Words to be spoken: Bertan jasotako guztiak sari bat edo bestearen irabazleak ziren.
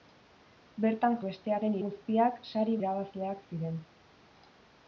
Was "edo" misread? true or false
true